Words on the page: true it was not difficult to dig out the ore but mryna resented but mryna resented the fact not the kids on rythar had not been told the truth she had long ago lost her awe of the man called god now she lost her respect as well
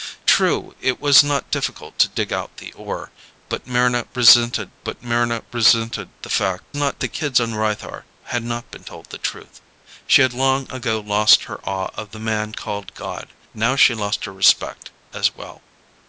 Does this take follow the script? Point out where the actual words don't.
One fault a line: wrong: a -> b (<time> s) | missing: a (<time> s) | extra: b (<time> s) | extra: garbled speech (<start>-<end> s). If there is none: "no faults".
no faults